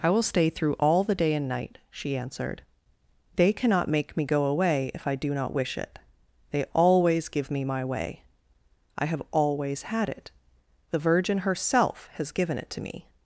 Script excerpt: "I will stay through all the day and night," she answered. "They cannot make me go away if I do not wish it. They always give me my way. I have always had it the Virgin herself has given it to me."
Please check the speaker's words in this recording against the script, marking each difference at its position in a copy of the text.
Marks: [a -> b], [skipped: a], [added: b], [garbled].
"I will stay through all the day and night," she answered. "They cannot make me go away if I do not wish it. They always give me my way. I have always had it the Virgin herself has given it to me."